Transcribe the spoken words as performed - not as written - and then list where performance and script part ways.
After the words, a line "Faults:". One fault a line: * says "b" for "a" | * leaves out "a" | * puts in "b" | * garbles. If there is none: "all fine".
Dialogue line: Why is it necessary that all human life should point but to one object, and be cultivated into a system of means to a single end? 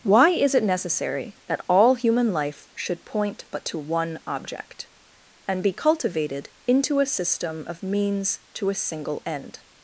Why is it necessary that all human life should point but to one object, and be cultivated into a system of means to a single end?
Faults:
all fine